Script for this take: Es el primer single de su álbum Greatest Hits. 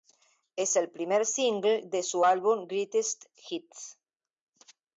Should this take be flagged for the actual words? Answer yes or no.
no